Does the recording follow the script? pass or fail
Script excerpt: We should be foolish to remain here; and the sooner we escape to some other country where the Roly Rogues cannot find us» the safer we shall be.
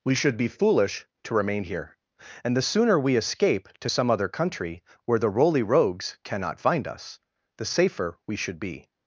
fail